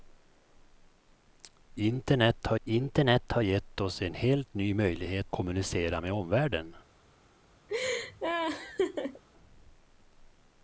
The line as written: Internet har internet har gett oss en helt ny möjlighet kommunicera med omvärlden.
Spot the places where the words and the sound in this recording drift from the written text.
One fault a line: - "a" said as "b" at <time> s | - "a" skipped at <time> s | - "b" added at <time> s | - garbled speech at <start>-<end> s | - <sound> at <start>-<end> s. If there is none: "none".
- laugh at 7.7-9.2 s